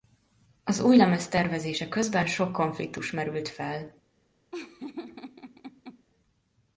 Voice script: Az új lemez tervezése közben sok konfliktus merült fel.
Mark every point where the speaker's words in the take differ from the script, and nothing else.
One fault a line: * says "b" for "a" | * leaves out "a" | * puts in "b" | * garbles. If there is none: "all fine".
all fine